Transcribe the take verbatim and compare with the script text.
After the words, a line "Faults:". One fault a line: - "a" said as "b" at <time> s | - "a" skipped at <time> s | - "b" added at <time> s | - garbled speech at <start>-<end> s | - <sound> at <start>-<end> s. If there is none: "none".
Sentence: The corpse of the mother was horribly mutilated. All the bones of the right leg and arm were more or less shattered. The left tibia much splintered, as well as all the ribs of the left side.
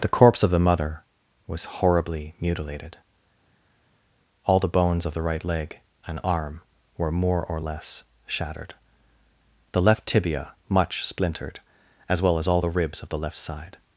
The corpse of the mother was horribly mutilated. All the bones of the right leg and arm were more or less shattered. The left tibia much splintered, as well as all the ribs of the left side.
Faults:
none